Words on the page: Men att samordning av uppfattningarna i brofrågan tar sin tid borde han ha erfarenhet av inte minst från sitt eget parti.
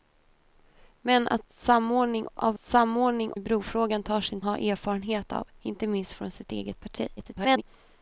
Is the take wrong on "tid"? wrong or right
wrong